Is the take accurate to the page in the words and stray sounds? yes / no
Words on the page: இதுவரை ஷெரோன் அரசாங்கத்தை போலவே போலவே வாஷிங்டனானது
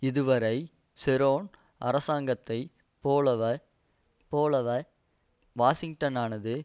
yes